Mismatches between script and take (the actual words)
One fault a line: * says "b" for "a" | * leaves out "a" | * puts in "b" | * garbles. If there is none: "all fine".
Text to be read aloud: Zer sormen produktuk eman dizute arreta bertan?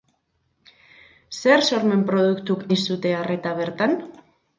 * leaves out "eman"